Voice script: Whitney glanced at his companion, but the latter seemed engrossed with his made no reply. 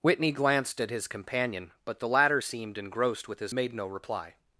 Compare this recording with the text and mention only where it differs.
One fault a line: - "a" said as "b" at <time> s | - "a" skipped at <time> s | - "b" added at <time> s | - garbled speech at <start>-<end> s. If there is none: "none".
none